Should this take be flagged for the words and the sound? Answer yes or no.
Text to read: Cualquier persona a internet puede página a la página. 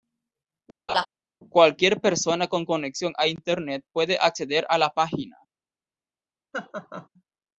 yes